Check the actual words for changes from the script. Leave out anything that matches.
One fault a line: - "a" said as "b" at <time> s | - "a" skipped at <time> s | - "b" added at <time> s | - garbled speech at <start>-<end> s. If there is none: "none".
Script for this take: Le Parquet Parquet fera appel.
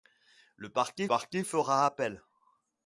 none